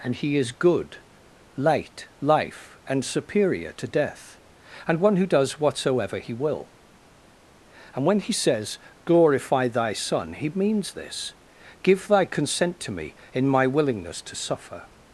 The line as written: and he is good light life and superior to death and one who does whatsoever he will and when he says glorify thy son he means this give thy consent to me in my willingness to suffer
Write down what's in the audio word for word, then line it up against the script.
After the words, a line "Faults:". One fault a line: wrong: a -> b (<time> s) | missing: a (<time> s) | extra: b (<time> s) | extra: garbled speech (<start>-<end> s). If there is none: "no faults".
and he is good light life and superior to death and one who does whatsoever he will and when he says glorify thy son he means this give thy consent to me in my willingness to suffer
Faults:
no faults